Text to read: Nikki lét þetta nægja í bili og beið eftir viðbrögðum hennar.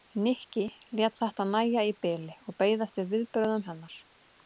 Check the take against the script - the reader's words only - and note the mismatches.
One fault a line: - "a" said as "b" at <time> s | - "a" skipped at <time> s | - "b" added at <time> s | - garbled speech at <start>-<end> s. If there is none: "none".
none